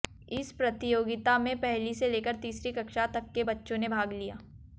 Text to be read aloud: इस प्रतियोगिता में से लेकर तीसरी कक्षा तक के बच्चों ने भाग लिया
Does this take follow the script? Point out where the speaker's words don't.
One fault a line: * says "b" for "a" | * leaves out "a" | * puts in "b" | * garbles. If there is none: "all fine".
* puts in "पहली"